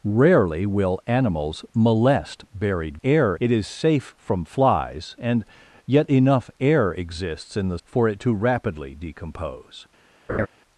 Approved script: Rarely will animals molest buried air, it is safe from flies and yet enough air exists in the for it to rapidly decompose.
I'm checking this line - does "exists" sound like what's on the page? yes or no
yes